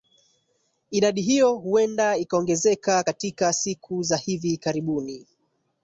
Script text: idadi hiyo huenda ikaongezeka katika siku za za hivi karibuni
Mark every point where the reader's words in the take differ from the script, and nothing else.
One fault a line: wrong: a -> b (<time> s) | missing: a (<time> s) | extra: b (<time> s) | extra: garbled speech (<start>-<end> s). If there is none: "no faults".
missing: za (4.2 s)